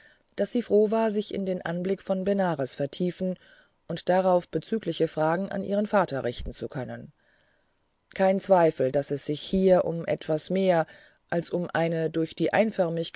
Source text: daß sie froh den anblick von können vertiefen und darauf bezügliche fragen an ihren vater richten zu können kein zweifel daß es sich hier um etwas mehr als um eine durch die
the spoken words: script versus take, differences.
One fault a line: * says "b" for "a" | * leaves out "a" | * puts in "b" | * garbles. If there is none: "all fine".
* puts in "war sich in"
* says "benares" for "können"